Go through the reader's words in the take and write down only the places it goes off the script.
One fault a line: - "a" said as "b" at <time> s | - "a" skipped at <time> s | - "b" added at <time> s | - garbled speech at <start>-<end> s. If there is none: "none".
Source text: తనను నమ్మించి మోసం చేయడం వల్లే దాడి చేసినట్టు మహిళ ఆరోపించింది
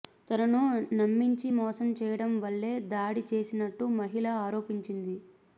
none